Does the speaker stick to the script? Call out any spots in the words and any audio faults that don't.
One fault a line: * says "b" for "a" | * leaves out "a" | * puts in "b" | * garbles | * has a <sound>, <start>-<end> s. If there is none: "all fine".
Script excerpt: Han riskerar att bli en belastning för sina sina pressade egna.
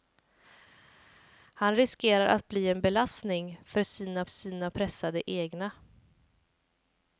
all fine